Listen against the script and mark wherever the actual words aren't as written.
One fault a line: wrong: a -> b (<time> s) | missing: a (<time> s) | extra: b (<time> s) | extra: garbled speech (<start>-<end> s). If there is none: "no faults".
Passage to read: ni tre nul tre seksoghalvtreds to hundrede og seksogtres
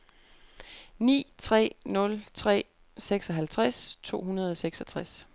no faults